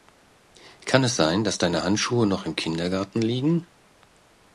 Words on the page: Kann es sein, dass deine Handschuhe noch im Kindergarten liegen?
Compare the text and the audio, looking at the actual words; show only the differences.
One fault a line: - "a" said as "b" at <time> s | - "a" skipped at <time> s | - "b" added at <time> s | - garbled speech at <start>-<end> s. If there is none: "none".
none